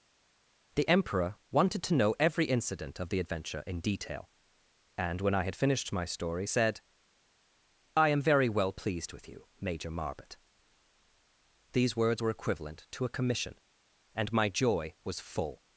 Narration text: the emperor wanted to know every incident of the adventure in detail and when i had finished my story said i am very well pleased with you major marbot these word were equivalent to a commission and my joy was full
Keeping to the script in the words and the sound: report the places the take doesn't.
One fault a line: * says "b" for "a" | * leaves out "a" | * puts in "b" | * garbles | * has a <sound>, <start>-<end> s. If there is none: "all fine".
* says "words" for "word"